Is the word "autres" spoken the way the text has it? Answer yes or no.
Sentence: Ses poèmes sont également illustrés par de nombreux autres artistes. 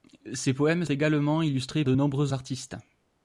no